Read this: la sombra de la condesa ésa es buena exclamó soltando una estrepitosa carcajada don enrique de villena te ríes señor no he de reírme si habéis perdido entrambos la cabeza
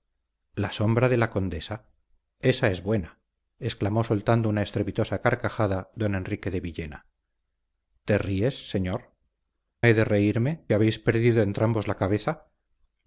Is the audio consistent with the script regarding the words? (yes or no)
no